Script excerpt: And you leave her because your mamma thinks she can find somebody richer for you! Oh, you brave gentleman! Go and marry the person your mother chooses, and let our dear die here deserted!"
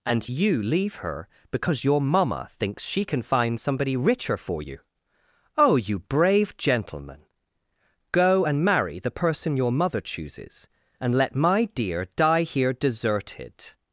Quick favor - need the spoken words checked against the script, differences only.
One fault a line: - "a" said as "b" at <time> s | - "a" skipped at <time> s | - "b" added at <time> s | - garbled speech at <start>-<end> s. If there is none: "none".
- "our" said as "my" at 11.4 s